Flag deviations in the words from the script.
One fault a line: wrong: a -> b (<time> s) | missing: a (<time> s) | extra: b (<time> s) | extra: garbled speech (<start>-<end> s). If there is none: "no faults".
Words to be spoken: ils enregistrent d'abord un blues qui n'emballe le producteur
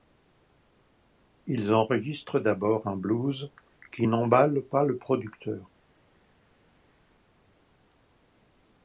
extra: pas (4.6 s)